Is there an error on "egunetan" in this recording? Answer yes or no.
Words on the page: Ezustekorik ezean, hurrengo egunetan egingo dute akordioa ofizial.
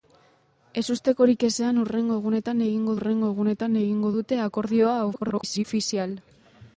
no